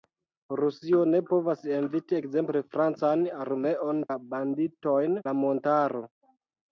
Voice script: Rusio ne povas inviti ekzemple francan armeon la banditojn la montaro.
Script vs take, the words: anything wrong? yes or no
no